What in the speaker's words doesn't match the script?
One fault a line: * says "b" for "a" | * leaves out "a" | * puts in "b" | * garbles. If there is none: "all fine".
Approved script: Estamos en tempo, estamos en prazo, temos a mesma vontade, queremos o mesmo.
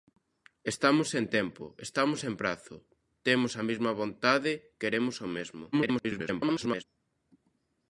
* garbles